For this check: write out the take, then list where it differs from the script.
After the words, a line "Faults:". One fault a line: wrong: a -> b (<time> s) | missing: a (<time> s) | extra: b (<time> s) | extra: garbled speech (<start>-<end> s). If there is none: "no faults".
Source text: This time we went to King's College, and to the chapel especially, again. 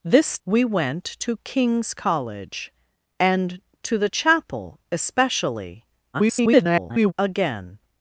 This we went to King's College, and to the chapel especially, [garbled] again.
Faults:
missing: time (0.4 s)
extra: garbled speech (6.1-7.1 s)